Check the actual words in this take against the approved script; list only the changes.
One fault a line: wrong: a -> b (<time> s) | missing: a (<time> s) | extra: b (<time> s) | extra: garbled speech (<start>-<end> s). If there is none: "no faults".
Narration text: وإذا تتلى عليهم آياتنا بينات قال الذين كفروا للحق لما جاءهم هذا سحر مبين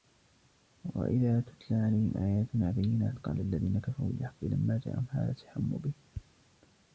no faults